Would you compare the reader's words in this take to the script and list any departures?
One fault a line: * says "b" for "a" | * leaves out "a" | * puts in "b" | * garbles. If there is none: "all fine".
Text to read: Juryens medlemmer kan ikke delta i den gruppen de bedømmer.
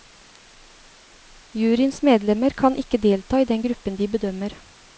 all fine